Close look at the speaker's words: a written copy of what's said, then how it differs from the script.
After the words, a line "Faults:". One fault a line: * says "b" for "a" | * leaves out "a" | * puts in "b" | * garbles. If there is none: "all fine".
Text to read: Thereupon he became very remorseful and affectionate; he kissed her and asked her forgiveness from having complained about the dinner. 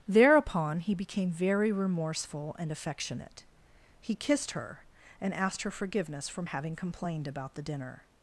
Thereupon he became very remorseful and affectionate; he kissed her and asked her forgiveness from having complained about the dinner.
Faults:
all fine